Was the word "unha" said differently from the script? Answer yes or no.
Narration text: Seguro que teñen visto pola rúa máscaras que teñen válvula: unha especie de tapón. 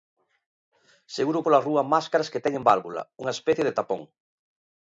no